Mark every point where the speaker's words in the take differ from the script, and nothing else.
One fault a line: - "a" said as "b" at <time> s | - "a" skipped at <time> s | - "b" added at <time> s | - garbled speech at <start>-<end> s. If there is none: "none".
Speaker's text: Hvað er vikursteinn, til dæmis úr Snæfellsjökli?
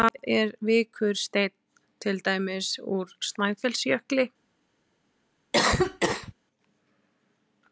none